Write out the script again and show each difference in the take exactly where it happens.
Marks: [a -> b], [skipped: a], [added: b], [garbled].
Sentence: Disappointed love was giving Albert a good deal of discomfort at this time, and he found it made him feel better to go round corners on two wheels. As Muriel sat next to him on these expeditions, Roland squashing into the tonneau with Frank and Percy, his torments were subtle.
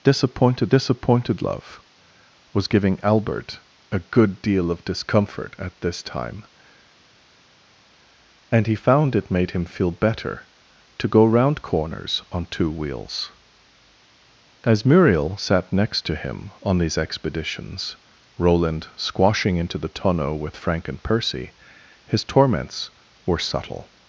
Disappointed [added: disappointed] love was giving Albert a good deal of discomfort at this time, and he found it made him feel better to go round corners on two wheels. As Muriel sat next to him on these expeditions, Roland squashing into the tonneau with Frank and Percy, his torments were subtle.